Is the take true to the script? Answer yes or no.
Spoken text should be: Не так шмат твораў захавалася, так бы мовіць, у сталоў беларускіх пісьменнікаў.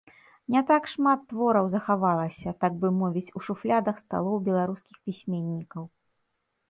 no